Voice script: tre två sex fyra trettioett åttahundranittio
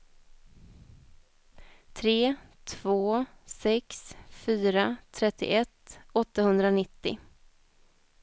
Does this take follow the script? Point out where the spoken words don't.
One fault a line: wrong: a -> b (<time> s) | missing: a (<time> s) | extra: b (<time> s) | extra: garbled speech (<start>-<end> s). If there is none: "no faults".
no faults